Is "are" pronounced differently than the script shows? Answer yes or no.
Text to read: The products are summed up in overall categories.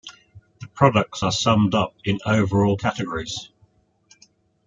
no